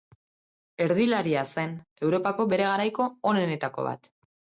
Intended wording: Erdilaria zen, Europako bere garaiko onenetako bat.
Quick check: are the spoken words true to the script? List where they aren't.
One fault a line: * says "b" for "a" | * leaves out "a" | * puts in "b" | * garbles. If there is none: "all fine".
all fine